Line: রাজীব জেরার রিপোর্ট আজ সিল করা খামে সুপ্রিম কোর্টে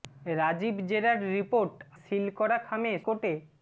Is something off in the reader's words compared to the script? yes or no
yes